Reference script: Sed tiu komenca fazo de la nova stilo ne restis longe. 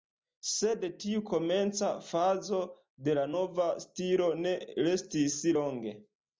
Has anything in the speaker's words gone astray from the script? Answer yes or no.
no